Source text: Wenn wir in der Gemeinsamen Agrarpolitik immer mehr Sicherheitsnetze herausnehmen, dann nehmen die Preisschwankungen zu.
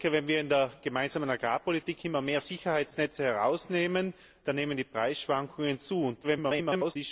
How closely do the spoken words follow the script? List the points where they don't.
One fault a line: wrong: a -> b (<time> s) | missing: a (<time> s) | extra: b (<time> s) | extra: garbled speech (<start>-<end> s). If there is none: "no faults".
extra: garbled speech (6.2-7.0 s)